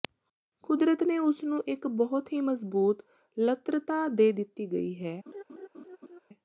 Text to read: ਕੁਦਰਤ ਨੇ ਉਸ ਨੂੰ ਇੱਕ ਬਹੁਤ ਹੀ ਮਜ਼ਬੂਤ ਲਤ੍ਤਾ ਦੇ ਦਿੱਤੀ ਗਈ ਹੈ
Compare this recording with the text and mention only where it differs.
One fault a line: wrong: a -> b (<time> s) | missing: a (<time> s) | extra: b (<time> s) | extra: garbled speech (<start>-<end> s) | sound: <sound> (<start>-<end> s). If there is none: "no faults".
sound: laugh (5.3-6.2 s)